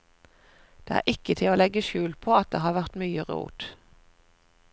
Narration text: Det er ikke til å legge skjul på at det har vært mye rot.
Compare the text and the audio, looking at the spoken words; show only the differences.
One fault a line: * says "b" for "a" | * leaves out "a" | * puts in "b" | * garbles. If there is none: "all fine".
all fine